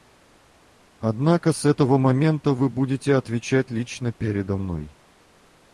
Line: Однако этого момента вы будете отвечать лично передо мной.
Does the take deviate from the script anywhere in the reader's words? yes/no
yes